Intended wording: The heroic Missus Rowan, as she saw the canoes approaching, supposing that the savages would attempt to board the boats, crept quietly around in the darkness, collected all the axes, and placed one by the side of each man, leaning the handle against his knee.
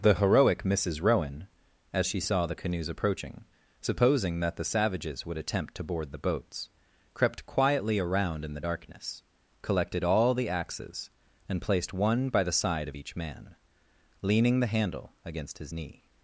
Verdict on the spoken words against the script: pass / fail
pass